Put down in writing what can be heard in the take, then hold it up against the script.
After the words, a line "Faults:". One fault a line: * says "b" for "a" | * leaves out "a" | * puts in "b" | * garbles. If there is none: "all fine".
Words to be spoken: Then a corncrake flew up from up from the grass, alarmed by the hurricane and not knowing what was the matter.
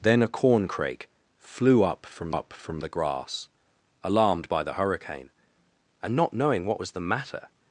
Then a corncrake flew up from up from the grass, alarmed by the hurricane and not knowing what was the matter.
Faults:
all fine